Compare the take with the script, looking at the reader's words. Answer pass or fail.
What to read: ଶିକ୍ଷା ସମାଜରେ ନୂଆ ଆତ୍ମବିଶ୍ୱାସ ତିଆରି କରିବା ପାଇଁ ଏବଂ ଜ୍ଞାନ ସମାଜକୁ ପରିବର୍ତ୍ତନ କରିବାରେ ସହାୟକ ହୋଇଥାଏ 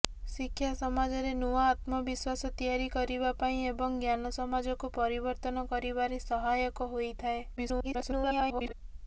fail